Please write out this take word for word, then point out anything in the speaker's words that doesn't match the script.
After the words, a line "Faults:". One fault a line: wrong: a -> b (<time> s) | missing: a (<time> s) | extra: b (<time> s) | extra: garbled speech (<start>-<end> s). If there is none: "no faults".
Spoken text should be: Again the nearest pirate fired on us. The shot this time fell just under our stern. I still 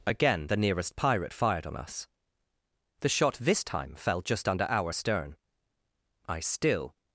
Again the nearest pirate fired on us. The shot this time fell just under our stern. I still
Faults:
no faults